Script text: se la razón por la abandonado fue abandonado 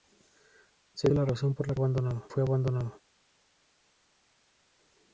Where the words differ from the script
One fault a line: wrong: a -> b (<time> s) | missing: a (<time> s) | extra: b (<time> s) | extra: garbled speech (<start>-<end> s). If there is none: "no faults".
no faults